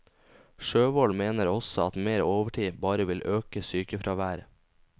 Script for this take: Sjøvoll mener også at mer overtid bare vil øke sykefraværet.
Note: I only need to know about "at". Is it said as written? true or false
true